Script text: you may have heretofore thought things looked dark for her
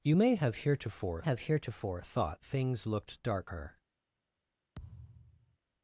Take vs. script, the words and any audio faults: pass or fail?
fail